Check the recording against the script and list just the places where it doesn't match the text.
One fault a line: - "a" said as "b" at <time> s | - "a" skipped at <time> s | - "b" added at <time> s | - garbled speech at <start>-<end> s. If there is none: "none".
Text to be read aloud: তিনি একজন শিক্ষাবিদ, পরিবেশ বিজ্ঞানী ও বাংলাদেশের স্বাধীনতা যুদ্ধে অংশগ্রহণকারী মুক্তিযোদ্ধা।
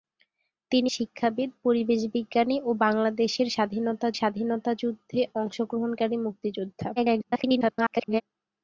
- "একজন" skipped at 0.9 s
- "স্বাধীনতা" added at 4.1 s
- garbled speech at 7.0-8.2 s